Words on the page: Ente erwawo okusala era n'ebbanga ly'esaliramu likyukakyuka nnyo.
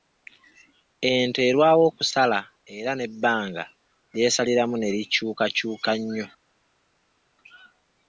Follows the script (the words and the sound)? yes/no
no